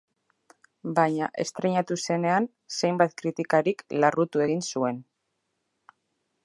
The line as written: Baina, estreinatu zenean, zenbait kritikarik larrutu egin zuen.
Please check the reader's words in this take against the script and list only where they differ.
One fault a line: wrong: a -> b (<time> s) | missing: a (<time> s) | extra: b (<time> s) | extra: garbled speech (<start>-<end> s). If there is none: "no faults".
no faults